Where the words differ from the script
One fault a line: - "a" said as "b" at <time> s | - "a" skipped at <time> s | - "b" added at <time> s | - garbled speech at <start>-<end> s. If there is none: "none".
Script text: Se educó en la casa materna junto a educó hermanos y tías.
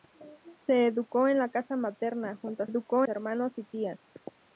none